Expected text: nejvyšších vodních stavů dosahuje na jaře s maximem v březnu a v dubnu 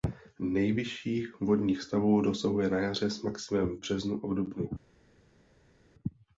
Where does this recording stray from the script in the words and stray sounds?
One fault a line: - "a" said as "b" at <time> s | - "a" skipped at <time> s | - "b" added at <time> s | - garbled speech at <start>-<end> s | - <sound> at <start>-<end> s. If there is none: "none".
none